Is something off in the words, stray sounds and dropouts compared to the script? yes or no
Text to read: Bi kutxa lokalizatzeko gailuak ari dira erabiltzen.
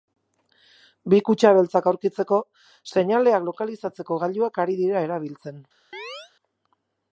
yes